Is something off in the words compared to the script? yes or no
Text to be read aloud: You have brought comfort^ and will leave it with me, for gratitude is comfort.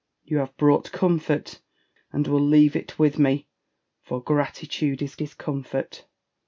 yes